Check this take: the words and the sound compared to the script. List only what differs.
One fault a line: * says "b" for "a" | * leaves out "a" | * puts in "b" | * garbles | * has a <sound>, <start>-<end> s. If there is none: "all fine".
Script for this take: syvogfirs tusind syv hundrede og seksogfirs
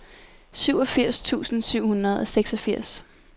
all fine